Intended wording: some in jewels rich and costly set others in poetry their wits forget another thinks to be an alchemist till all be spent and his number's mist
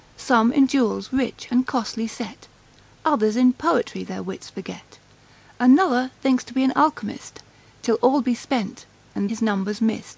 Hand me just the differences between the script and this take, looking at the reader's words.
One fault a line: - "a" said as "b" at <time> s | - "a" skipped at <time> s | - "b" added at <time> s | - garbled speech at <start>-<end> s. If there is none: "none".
none